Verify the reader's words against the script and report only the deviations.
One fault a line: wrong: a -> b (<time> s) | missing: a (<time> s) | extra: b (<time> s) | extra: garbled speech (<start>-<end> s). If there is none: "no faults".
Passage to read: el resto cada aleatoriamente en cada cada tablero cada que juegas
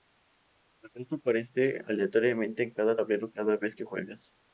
wrong: cada -> aparece (1.1 s)
missing: cada (3.0 s)
extra: vez (3.6 s)